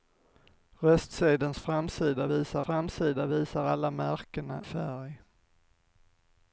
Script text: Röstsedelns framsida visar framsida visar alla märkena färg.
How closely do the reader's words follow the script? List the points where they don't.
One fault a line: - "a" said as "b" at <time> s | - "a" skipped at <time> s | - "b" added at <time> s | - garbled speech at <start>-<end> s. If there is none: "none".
none